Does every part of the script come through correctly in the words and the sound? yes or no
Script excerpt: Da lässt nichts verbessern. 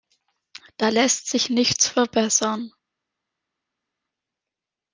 no